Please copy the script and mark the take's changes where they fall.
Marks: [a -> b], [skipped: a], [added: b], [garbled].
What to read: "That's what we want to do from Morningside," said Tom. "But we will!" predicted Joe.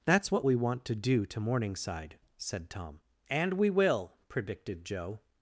"That's what we want to do [from -> to] Morningside," said Tom. ["But -> And] we will!" predicted Joe.